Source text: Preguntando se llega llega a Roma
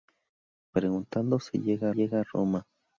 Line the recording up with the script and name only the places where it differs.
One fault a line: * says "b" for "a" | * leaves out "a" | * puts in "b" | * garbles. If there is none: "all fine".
all fine